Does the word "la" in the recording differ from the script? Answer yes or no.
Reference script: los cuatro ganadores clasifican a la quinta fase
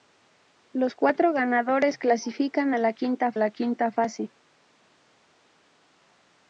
no